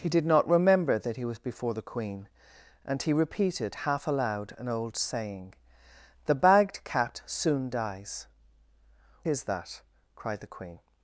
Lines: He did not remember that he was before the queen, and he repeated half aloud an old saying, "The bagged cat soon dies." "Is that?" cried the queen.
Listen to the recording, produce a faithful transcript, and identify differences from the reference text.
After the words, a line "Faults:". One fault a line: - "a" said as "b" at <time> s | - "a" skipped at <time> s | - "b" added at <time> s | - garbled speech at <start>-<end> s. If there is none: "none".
He did not remember that he was before the queen, and he repeated half aloud an old saying, "The bagged cat soon dies." "Is that?" cried the queen.
Faults:
none